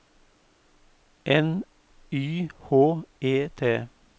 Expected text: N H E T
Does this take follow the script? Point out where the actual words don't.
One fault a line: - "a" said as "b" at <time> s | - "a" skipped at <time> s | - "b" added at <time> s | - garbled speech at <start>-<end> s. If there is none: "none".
- "Y" added at 2.1 s